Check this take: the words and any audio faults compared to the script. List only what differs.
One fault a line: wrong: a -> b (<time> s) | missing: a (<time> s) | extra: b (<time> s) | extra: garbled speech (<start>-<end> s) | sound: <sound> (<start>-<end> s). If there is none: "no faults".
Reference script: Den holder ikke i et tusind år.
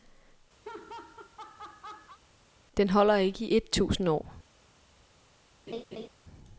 sound: laugh (0.6-2.2 s)
sound: laugh (5.7-6.1 s)